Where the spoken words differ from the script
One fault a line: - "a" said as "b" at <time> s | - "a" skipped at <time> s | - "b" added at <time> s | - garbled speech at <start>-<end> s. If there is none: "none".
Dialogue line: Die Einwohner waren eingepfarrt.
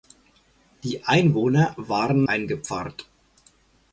none